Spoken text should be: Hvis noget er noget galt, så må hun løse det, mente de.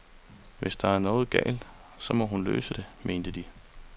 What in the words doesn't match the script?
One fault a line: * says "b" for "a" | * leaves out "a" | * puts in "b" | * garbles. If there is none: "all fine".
* says "der" for "noget"